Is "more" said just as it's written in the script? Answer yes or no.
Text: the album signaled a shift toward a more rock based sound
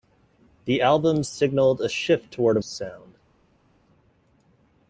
no